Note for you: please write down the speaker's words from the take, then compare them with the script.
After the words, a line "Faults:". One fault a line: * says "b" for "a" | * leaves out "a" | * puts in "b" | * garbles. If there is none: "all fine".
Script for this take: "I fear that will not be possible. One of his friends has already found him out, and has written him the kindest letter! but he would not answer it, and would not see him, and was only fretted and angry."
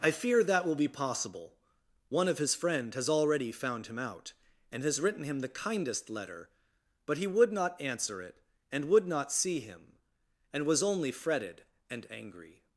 "I fear that will be possible. One of his friend has already found him out, and has written him the kindest letter! but he would not answer it, and would not see him, and was only fretted and angry."
Faults:
* leaves out "not"
* says "friend" for "friends"